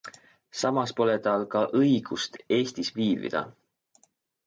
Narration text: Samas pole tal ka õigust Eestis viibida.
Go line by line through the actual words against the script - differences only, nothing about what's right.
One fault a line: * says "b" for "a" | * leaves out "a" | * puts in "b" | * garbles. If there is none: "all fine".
all fine